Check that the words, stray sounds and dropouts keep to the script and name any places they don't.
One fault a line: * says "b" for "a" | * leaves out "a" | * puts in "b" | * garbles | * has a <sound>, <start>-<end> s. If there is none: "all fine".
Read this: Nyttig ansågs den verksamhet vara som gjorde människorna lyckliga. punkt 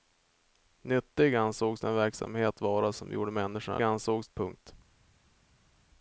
* says "ansågs" for "lyckliga"